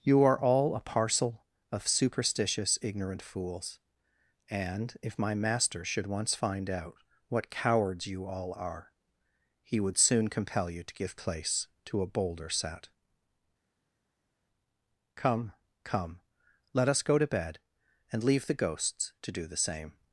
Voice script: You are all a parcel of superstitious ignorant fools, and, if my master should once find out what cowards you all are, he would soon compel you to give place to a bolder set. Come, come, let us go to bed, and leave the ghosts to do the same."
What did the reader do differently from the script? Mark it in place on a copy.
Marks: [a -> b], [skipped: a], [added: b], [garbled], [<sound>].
You are all a parcel of superstitious ignorant fools, and, if my master should once find out what cowards you all are, he would soon compel you to give place to a bolder set. Come, come, let us go to bed, and leave the ghosts to do the same."